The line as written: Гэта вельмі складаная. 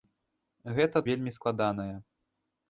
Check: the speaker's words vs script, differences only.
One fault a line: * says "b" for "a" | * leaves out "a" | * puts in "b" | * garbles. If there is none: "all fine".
all fine